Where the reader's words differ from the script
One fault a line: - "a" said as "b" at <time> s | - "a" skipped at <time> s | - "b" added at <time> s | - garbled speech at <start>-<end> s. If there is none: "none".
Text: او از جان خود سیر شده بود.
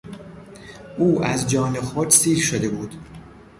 none